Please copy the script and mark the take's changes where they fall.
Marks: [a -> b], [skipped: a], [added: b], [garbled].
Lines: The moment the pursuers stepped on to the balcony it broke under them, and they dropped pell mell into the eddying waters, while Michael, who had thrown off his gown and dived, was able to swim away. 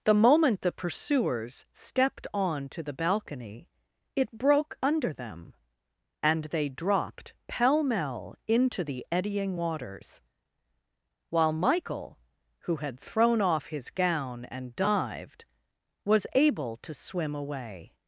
The moment the pursuers stepped on to the balcony it broke under them, and they dropped pell mell into the eddying waters, while Michael, who had thrown off his gown and dived, was able to swim away.